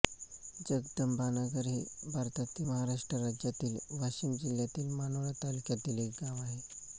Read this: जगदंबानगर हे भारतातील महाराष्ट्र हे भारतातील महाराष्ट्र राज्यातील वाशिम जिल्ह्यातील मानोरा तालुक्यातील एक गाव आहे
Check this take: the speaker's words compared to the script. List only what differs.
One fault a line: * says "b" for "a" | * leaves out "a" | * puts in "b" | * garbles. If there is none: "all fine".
* leaves out "हे भारतातील महाराष्ट्र"